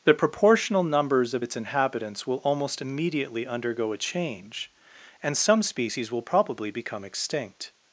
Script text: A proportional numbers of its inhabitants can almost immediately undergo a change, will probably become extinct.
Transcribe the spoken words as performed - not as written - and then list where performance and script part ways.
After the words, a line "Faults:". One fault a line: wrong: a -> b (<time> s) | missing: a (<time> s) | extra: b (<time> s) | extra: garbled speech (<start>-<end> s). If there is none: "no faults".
The proportional numbers of its inhabitants will almost immediately undergo a change, and some species will probably become extinct.
Faults:
wrong: A -> The (0.0 s)
wrong: can -> will (2.3 s)
extra: and some species (5.2 s)